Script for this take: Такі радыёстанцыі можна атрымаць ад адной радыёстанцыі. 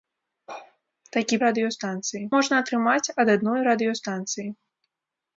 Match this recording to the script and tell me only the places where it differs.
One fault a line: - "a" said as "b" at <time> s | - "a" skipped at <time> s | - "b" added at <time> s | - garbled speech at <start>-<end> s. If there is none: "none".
none